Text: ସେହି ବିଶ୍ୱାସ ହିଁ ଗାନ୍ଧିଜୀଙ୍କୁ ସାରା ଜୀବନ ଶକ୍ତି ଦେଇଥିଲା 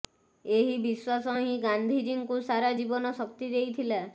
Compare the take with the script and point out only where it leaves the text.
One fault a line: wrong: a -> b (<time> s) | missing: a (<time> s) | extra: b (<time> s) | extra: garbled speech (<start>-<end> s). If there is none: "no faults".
wrong: ସେହି -> ଏହି (0.5 s)